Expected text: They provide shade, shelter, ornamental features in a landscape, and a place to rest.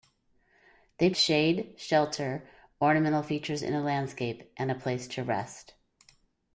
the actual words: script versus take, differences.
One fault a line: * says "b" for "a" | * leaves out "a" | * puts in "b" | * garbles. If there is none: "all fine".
* leaves out "provide"